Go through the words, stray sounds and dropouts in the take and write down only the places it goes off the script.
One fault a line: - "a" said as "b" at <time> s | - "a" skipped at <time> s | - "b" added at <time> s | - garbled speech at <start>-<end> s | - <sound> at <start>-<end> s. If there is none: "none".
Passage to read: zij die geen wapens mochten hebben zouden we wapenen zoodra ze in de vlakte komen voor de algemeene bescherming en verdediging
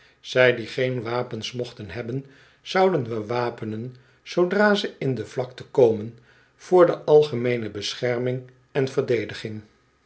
none